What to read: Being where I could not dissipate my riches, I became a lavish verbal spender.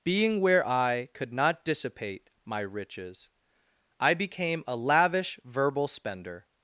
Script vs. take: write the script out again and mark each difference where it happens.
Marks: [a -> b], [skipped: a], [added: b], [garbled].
Being where I could not dissipate my riches, I became a lavish verbal spender.